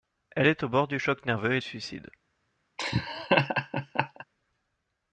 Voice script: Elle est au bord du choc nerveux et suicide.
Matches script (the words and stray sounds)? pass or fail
fail